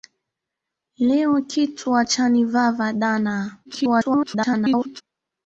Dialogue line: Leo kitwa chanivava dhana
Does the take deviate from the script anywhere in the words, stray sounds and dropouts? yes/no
yes